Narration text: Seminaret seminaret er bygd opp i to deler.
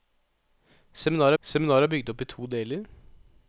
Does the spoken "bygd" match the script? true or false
true